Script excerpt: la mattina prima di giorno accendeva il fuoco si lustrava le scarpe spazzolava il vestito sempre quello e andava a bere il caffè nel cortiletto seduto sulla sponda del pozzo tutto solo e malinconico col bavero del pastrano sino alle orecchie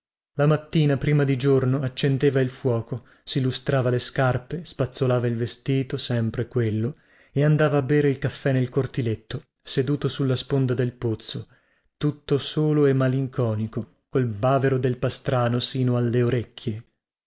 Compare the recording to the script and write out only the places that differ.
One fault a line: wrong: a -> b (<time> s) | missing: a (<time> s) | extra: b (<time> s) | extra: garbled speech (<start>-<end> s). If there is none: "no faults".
no faults